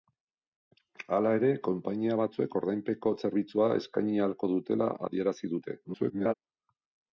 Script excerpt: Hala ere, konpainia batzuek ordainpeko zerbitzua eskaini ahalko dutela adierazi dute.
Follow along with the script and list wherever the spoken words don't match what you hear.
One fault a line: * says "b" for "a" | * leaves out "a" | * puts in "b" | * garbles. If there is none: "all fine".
* garbles